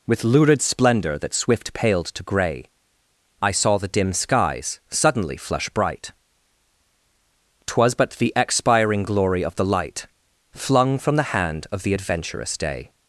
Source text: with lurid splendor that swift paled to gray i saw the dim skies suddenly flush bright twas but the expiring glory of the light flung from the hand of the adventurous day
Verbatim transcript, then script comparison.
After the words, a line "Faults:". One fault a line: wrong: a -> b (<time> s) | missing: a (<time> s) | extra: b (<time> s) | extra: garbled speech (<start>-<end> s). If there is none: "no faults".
with lurid splendor that swift paled to gray i saw the dim skies suddenly flush bright twas but the expiring glory of the light flung from the hand of the adventurous day
Faults:
no faults